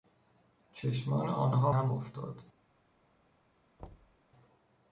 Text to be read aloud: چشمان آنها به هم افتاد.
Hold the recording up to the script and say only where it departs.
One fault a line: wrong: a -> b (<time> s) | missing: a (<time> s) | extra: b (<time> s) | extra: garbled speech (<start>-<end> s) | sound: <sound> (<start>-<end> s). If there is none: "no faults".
missing: به (1.7 s)
sound: thud (3.8-4.2 s)